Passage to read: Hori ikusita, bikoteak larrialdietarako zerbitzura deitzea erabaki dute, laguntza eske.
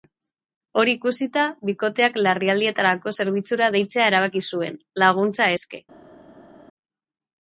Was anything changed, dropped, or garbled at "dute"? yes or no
yes